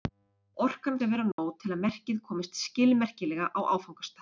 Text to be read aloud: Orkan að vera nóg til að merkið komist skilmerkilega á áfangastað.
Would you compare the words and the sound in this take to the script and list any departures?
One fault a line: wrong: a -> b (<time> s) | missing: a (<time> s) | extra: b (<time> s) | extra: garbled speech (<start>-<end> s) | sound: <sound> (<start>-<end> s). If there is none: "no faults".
sound: dropout (1.3-1.4 s)